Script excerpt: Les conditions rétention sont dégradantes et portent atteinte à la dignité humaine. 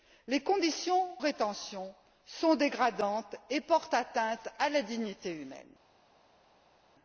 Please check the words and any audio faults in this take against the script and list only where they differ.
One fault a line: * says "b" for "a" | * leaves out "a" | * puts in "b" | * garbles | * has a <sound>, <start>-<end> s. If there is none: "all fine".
all fine